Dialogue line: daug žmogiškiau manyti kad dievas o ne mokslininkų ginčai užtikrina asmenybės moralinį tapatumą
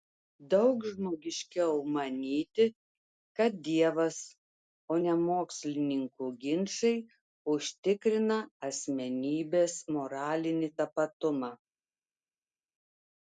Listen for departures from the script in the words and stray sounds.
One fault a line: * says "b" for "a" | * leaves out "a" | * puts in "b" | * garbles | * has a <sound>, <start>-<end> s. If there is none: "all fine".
all fine